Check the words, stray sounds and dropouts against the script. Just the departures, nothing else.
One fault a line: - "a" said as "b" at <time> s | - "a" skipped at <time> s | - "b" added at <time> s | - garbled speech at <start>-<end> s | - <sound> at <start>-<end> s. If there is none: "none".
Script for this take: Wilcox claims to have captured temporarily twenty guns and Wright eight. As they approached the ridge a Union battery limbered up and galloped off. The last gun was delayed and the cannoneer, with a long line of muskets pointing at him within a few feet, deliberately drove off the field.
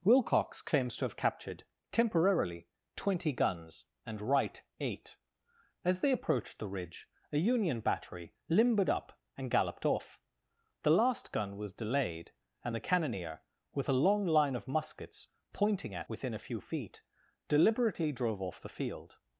- "him" skipped at 16.1 s